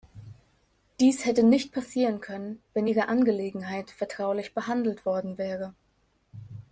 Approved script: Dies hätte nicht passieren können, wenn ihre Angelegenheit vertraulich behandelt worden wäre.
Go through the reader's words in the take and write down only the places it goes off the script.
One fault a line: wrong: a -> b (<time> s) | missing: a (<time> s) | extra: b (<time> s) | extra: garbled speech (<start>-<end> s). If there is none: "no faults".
no faults